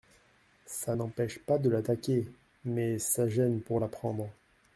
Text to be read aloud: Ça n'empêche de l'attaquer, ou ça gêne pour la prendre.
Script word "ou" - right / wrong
wrong